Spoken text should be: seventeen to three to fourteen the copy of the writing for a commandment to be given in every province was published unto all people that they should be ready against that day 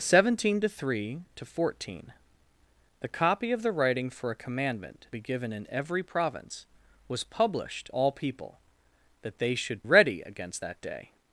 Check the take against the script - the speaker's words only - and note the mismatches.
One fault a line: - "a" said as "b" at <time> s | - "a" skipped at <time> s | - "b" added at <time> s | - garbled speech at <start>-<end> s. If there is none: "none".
- "to" skipped at 5.0 s
- "unto" skipped at 7.9 s
- "be" skipped at 9.8 s